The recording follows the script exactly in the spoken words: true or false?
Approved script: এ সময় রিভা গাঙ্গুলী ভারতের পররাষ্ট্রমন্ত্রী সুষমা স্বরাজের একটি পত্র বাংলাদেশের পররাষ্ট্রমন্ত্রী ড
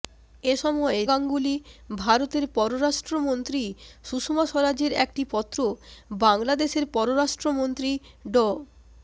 false